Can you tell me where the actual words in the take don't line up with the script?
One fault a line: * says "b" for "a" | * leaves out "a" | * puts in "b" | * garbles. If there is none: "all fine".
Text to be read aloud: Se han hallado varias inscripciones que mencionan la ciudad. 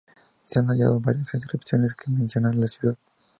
all fine